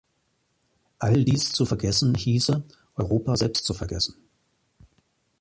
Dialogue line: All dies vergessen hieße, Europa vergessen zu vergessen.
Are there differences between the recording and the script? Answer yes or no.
yes